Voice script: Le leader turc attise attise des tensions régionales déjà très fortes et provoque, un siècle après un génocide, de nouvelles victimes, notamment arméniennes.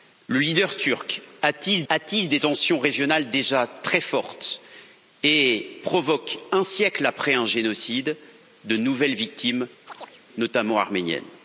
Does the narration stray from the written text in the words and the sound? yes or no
yes